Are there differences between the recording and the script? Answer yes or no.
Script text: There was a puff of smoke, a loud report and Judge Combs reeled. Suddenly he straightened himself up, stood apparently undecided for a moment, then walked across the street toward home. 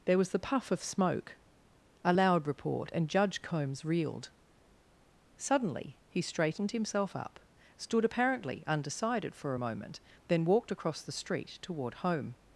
yes